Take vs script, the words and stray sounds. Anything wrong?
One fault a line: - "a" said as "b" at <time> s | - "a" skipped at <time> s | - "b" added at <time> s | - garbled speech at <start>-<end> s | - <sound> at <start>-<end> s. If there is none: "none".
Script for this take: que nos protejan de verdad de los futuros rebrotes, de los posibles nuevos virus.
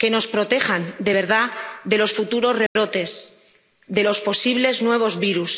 - dropout at 2.7-2.8 s